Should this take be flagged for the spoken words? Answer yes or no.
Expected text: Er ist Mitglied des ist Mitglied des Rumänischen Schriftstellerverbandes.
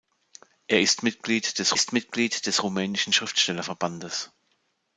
no